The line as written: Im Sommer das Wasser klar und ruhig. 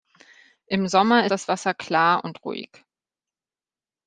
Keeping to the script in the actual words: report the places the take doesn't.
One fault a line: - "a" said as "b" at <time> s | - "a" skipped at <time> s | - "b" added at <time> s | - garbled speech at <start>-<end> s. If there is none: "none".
none